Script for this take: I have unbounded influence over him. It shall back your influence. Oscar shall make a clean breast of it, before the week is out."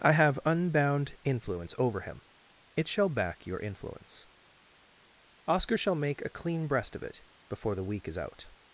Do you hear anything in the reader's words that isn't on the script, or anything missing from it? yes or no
yes